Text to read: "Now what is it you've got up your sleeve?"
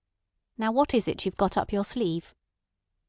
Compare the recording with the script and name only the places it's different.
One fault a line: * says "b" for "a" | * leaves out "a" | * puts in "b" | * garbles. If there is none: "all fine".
all fine